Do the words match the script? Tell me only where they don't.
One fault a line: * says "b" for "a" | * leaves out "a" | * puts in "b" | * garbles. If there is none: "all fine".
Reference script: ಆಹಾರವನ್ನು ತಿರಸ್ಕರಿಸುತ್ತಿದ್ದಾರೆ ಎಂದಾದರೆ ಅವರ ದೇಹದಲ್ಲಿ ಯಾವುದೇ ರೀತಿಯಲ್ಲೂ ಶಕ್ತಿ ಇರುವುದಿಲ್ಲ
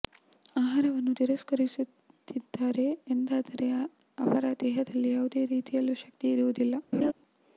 all fine